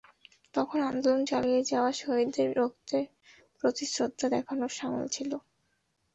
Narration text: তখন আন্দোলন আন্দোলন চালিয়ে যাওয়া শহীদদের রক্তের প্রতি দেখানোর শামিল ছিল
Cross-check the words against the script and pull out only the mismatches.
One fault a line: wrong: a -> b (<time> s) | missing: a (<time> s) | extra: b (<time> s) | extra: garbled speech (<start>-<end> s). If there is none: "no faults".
missing: আন্দোলন (1.2 s)
extra: শ্রদ্ধা (3.9 s)